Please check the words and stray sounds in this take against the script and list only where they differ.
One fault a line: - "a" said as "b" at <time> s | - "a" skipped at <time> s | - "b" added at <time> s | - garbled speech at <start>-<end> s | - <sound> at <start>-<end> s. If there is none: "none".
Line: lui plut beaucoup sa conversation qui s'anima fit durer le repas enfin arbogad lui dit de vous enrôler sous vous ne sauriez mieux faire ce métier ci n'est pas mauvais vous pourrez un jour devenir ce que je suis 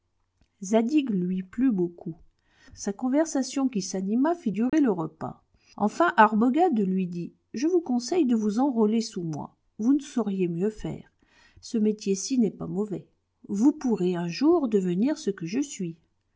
- dropout at 4.7-4.7 s
- "je vous conseille" added at 7.5 s
- "moi" added at 9.2 s